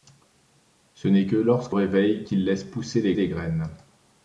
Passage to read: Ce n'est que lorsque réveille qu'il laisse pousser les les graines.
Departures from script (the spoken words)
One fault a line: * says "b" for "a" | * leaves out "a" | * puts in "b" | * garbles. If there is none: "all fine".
all fine